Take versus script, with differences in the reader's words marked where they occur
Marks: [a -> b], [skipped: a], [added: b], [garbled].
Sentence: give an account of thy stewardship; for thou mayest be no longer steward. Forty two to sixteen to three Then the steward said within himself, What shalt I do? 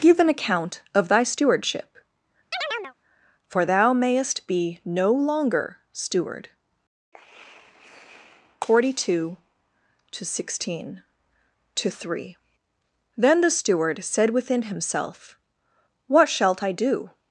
give an account of thy stewardship; for thou mayest be no longer steward. Forty two to sixteen to three Then the steward said within himself, What shalt I do?